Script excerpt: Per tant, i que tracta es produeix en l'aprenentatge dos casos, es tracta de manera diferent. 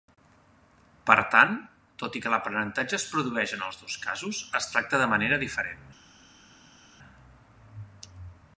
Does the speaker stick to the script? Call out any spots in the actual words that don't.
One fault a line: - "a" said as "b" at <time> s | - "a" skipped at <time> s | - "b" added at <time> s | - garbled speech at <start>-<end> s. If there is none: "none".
- "tot" added at 2.0 s
- "tracta" said as "l'aprenentatge" at 2.4 s
- "l'aprenentatge" said as "els" at 3.7 s